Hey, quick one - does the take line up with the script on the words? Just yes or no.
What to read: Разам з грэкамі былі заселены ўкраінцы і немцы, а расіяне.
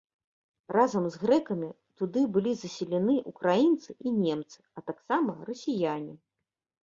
no